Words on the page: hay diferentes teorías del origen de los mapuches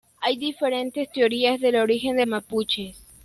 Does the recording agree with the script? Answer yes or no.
no